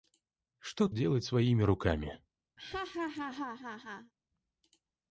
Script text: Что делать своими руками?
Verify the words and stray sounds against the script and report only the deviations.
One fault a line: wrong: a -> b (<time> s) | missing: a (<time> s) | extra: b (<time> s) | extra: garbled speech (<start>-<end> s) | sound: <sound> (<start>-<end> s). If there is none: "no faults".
sound: laugh (2.6-4.1 s)